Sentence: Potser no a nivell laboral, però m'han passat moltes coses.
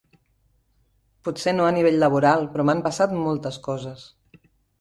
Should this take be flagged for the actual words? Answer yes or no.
no